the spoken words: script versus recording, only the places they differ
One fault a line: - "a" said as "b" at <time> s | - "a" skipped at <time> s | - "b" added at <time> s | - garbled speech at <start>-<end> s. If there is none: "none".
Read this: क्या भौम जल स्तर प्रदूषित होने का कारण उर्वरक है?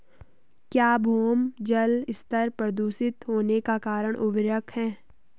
none